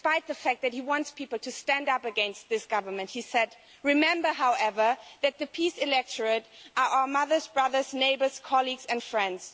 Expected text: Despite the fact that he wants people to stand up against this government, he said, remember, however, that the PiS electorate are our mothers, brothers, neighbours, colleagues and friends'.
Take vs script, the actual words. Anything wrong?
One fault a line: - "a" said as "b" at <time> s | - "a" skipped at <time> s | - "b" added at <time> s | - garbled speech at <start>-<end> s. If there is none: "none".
none